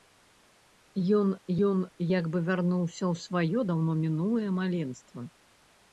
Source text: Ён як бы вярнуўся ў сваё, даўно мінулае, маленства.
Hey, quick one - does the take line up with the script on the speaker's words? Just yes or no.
no